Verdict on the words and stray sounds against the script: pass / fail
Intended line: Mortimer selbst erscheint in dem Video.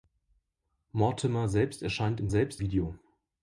fail